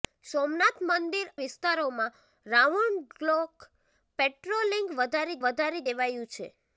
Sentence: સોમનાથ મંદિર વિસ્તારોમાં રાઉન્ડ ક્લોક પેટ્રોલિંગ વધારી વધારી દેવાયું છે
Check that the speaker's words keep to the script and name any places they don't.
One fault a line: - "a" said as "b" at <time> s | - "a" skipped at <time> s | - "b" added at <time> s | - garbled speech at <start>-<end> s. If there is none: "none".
none